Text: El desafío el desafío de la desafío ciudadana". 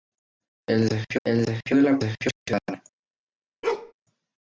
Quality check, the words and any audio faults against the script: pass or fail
fail